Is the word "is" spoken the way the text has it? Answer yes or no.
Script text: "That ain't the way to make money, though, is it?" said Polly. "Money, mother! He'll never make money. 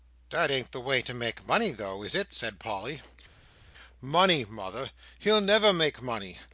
yes